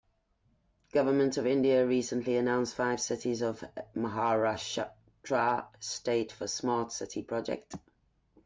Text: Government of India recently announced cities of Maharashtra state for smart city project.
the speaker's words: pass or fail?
fail